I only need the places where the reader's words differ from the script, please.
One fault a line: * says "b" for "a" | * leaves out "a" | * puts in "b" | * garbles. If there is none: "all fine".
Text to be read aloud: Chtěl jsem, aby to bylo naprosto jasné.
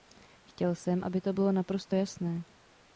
all fine